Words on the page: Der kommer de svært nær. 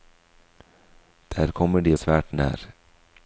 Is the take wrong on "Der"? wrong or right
right